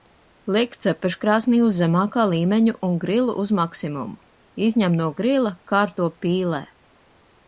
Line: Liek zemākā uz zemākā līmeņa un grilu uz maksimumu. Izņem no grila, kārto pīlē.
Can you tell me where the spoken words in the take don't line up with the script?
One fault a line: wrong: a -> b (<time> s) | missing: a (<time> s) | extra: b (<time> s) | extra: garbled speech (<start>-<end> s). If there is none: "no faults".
wrong: zemākā -> cepeškrāsnī (0.8 s)